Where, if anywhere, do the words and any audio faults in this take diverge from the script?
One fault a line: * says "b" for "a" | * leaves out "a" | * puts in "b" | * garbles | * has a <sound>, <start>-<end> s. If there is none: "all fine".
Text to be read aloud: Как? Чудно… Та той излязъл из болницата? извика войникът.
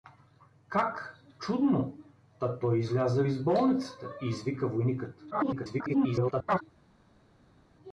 * garbles